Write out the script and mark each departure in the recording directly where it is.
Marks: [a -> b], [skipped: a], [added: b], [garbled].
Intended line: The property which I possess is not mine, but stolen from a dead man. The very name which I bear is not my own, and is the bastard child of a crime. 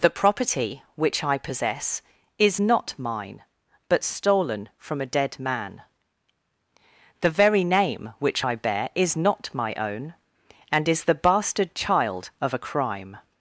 The property which I possess is not mine, but stolen from a dead man. The very name which I bear is not my own, and is the bastard child of a crime.